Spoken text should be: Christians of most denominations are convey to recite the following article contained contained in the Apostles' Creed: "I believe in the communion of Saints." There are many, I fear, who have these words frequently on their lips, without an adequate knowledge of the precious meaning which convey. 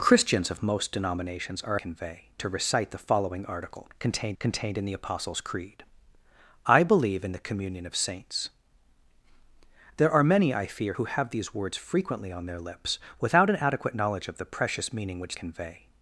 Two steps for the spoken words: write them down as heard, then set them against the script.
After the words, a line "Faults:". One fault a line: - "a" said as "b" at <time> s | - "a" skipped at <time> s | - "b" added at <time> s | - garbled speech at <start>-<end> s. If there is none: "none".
Christians of most denominations are convey to recite the following article contained contained in the Apostles' Creed: "I believe in the communion of Saints." There are many, I fear, who have these words frequently on their lips, without an adequate knowledge of the precious meaning which convey.
Faults:
none